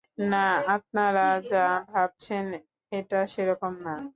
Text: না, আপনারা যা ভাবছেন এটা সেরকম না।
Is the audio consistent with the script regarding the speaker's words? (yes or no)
yes